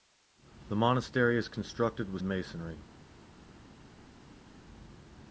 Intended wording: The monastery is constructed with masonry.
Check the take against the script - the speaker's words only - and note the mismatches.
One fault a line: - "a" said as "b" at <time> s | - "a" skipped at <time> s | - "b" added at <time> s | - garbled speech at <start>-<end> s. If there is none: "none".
none